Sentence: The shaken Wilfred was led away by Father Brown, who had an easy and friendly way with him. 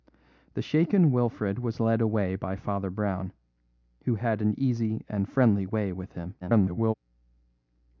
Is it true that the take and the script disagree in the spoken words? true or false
true